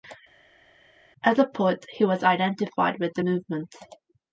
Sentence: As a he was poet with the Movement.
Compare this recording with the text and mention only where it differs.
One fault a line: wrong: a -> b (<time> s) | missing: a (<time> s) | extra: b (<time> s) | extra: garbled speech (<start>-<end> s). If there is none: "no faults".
extra: poet (1.5 s)
wrong: poet -> identified (2.2 s)